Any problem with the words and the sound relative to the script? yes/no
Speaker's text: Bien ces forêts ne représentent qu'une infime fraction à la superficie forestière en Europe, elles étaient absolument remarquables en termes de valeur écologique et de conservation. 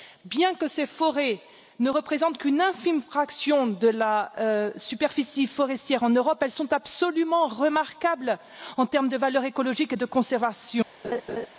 yes